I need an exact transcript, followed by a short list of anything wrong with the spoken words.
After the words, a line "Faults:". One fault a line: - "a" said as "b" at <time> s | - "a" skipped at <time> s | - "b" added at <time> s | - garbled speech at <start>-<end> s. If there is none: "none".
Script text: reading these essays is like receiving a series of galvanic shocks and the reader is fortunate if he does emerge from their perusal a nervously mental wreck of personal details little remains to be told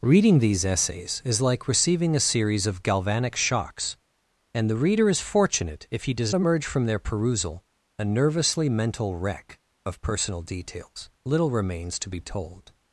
reading these essays is like receiving a series of galvanic shocks and the reader is fortunate if he does emerge from their perusal a nervously mental wreck of personal details little remains to be told
Faults:
none